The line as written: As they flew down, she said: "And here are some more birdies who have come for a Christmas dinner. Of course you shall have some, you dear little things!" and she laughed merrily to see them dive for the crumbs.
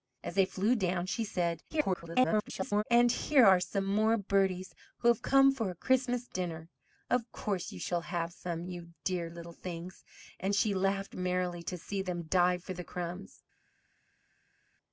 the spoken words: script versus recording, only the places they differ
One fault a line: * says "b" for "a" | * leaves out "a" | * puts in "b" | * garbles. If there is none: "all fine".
* garbles